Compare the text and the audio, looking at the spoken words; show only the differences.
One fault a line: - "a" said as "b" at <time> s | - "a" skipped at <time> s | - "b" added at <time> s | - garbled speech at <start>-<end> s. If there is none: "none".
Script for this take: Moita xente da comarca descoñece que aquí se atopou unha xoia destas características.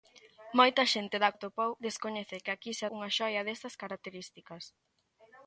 - "comarca" said as "atopou" at 1.3 s
- "atopou" skipped at 2.8 s